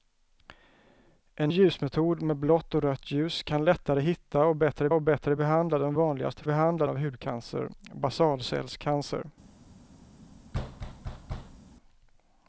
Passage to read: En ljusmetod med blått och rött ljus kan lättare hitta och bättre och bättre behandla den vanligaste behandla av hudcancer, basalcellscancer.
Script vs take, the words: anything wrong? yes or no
no